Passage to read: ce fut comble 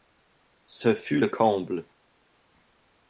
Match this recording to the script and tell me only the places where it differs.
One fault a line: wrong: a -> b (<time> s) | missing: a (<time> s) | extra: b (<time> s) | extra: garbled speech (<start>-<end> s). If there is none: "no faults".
extra: le (1.2 s)